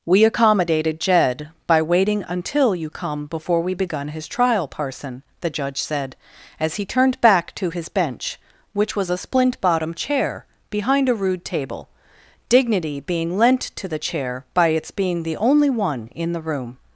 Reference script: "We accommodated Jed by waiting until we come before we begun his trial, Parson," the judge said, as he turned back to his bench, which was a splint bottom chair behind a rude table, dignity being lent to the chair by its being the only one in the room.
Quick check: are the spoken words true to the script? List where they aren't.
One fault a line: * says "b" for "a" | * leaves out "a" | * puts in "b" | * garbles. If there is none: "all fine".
* says "you" for "we"